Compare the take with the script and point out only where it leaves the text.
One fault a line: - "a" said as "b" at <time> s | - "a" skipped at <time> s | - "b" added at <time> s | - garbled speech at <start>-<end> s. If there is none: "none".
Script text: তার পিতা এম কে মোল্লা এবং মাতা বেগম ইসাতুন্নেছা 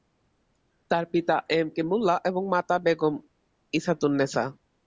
none